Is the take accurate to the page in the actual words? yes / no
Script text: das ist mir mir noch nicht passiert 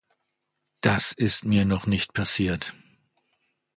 no